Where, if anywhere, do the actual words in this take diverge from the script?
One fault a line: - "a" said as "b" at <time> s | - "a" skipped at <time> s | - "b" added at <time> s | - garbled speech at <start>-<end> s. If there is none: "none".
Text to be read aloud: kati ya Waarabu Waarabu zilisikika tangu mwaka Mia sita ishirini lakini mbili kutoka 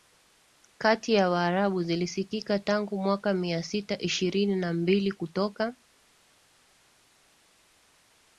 - "Waarabu" skipped at 1.8 s
- "lakini" said as "na" at 4.5 s